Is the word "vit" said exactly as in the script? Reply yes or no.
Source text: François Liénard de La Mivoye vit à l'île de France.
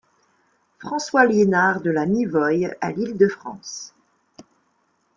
no